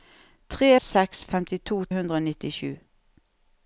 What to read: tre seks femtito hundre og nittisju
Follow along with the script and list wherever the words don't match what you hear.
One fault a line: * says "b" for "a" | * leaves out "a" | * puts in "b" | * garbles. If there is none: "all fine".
all fine